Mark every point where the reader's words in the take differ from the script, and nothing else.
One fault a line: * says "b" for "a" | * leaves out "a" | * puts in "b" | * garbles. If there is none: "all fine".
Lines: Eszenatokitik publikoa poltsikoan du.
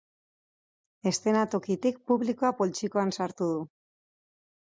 * puts in "sartu"